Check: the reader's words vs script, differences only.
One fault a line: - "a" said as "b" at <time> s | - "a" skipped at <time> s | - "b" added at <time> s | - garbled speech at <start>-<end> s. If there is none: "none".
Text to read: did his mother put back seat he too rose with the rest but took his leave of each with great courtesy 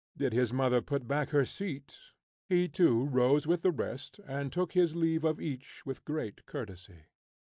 - "her" added at 1.3 s
- "but" said as "and" at 4.2 s